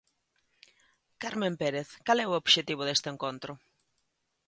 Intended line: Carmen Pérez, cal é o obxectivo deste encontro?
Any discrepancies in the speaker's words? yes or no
no